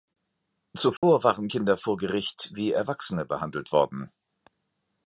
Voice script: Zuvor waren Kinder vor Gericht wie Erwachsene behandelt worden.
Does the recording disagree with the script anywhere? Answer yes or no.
no